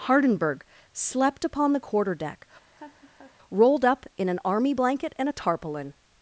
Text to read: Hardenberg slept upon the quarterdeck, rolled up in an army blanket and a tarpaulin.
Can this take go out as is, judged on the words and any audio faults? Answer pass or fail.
fail